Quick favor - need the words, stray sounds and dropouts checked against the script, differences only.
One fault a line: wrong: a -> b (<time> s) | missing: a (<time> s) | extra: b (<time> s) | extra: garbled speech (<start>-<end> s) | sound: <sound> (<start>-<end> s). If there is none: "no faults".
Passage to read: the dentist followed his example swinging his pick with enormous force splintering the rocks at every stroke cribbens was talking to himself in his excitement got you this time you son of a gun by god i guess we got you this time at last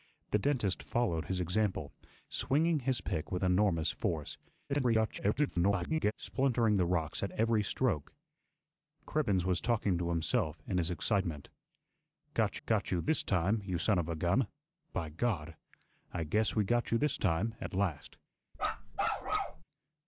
extra: garbled speech (4.7-6.1 s)
extra: got (12.7 s)
sound: bark (18.5-19.6 s)